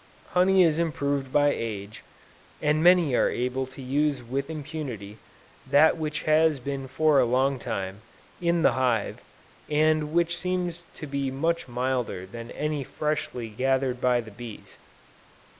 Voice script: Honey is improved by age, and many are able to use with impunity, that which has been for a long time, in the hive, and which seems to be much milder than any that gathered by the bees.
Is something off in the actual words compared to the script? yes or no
yes